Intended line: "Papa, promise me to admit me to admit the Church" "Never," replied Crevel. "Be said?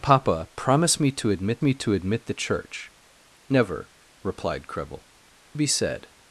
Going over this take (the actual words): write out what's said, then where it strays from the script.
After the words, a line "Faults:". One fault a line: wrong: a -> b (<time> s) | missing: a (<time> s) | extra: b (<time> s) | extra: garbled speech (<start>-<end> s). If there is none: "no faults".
"Papa, promise me to admit me to admit the Church" "Never," replied Crevel. "Be said?
Faults:
no faults